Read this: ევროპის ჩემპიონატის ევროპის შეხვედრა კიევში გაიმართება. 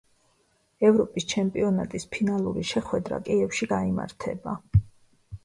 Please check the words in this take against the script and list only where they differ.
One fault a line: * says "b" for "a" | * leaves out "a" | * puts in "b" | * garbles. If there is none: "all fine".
* says "ფინალური" for "ევროპის"